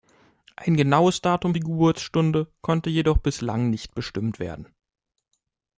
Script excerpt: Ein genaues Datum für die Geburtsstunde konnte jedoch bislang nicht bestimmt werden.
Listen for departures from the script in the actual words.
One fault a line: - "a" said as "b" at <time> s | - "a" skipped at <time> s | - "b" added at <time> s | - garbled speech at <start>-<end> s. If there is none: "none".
- "für" skipped at 1.5 s